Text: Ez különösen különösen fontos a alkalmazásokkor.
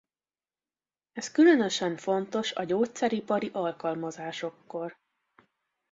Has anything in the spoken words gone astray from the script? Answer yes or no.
yes